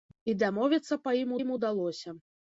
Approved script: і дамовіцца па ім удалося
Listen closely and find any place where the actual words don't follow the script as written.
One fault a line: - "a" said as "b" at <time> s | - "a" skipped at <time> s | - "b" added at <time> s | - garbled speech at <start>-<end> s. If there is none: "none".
- "ім" added at 1.4 s